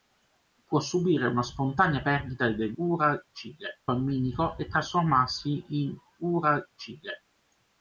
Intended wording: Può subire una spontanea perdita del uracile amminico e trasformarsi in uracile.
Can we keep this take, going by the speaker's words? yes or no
yes